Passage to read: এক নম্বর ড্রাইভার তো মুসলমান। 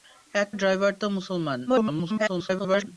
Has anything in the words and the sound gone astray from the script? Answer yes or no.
yes